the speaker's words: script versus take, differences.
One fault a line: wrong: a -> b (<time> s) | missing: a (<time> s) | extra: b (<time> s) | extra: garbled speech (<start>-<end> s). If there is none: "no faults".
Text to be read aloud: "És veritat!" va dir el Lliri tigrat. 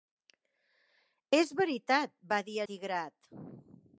missing: el Lliri (2.6 s)